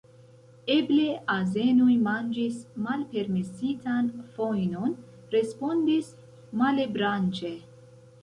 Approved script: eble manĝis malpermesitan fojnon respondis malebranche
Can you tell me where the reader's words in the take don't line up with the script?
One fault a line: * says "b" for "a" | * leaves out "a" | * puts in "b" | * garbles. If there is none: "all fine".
* puts in "azenoj"